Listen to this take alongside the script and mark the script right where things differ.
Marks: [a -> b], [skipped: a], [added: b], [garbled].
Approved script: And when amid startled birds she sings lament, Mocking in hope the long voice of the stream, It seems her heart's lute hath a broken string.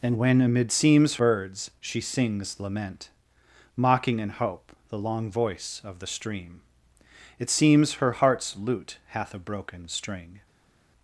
And when amid [startled -> seems] birds she sings lament, Mocking in hope the long voice of the stream, It seems her heart's lute hath a broken string.